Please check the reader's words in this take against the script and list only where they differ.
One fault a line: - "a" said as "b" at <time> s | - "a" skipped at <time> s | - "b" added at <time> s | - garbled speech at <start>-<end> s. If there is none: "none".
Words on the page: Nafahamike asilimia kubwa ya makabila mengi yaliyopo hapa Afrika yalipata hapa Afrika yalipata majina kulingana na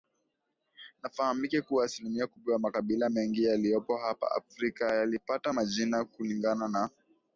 - "kuwa" added at 1.6 s
- "hapa Afrika yalipata" skipped at 5.5 s